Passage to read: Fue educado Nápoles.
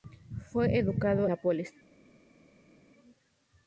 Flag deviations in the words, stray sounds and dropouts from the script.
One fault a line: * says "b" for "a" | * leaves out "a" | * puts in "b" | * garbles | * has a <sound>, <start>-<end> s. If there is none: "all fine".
all fine